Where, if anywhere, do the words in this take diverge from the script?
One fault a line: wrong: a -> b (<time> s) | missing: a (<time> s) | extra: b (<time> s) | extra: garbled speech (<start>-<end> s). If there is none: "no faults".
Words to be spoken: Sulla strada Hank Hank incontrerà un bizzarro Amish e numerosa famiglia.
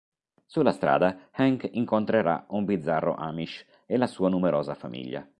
missing: Hank (1.7 s)
extra: la sua (4.0 s)